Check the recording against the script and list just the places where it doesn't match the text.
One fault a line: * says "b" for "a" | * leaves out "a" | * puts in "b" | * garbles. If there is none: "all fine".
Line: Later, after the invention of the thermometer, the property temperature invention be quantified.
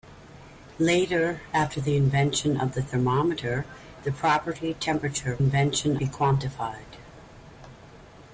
all fine